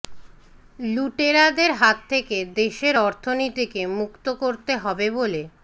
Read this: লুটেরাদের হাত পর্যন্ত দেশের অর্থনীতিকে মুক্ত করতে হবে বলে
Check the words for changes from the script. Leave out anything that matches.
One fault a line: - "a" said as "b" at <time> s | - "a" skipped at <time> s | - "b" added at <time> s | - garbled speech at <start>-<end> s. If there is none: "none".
- "পর্যন্ত" said as "থেকে" at 2.1 s